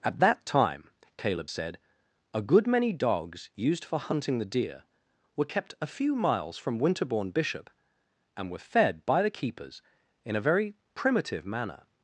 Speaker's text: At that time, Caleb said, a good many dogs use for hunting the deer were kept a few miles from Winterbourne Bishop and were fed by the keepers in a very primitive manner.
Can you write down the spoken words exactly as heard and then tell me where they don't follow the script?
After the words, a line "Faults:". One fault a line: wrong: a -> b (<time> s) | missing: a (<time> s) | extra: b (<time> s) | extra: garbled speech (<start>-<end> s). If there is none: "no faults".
At that time, Caleb said, a good many dogs used for hunting the deer were kept a few miles from Winterbourne Bishop and were fed by the keepers in a very primitive manner.
Faults:
wrong: use -> used (3.5 s)